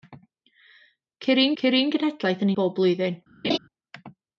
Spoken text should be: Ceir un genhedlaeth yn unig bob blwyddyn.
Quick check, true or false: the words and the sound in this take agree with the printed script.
false